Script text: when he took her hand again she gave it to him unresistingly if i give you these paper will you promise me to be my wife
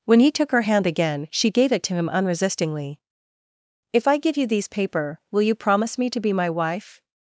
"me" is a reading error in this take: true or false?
false